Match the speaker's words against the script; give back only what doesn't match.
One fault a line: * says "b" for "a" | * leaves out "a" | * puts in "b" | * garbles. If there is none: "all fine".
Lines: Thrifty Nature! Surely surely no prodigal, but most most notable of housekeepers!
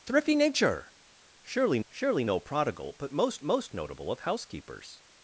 all fine